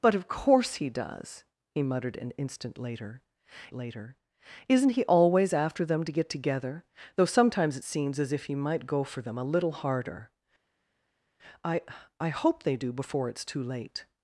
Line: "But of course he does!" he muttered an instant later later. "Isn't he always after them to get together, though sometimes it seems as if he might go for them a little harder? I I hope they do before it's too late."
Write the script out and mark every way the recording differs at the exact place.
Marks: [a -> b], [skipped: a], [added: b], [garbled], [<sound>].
"But of course he does!" he muttered an instant later later. "Isn't he always after them to get together, though sometimes it seems as if he might go for them a little harder? I I hope they do before it's too late."